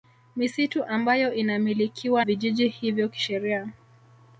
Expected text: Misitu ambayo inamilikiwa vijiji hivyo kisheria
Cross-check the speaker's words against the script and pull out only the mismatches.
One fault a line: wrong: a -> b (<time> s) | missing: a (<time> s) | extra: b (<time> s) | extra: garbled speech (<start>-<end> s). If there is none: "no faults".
no faults